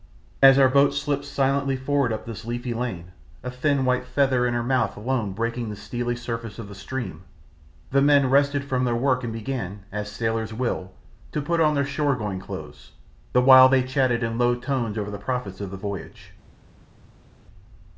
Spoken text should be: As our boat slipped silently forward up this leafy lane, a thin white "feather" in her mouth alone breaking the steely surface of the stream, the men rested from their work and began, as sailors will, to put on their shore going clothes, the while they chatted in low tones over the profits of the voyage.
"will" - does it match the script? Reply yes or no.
yes